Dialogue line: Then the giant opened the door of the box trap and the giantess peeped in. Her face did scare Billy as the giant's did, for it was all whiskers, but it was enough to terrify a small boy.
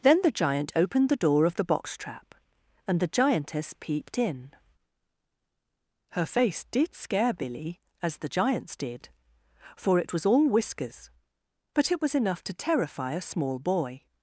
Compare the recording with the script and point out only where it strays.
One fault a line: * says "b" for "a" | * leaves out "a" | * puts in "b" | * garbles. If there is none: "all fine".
all fine